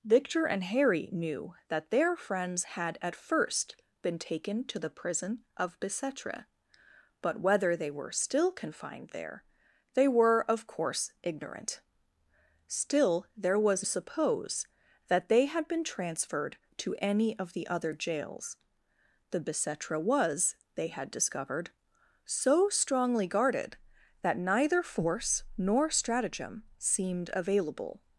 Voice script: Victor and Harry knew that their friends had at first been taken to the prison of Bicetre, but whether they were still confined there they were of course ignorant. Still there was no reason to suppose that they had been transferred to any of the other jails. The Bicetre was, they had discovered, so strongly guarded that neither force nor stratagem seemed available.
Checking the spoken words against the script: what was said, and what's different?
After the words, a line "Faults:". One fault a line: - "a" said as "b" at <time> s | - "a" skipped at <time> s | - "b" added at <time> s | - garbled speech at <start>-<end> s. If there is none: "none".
Victor and Harry knew that their friends had at first been taken to the prison of Bicetre, but whether they were still confined there they were of course ignorant. Still there was suppose that they had been transferred to any of the other jails. The Bicetre was, they had discovered, so strongly guarded that neither force nor stratagem seemed available.
Faults:
- "no reason to" skipped at 13.9 s